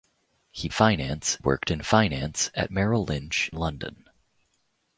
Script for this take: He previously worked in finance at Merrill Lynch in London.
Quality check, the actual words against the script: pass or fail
fail